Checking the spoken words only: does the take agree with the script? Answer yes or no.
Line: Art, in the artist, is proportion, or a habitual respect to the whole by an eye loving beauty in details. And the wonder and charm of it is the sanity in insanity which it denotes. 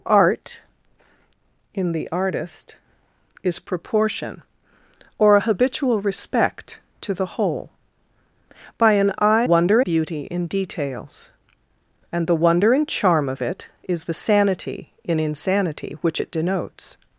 no